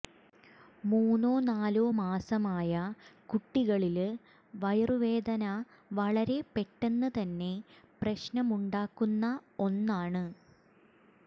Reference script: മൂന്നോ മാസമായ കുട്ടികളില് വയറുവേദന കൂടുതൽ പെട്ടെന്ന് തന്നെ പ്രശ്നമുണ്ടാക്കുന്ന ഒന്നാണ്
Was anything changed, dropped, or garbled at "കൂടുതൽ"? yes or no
yes